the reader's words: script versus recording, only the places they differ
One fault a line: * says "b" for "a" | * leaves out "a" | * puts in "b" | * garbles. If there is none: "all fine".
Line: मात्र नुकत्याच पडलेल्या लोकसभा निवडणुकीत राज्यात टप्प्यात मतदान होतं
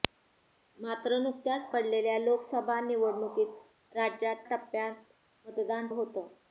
all fine